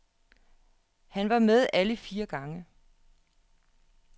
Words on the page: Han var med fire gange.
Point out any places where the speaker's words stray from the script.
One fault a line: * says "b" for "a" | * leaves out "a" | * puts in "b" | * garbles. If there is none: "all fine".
* puts in "alle"